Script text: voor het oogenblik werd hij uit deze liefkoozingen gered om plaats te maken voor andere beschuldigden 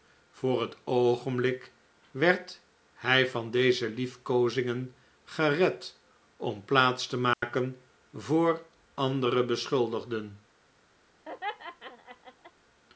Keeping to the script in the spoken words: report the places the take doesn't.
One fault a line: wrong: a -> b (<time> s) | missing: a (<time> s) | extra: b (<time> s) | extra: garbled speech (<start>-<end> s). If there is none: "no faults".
wrong: uit -> van (3.3 s)